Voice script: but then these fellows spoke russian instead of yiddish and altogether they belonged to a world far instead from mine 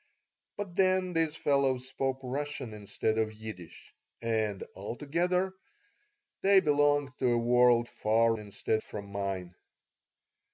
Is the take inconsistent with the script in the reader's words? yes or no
no